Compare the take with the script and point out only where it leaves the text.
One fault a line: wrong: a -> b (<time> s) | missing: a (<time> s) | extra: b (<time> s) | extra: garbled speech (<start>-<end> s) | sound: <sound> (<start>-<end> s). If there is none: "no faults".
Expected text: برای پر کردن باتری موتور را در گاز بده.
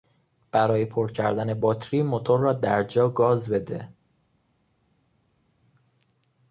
extra: جا (2.8 s)